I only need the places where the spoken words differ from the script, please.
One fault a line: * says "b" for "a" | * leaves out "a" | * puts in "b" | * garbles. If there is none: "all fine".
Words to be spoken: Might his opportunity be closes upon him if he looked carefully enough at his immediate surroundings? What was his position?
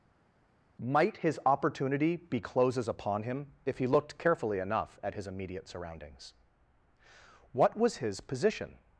all fine